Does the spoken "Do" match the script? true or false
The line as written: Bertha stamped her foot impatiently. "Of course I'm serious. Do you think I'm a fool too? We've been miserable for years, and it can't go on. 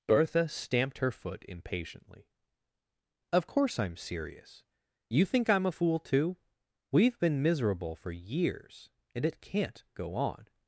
false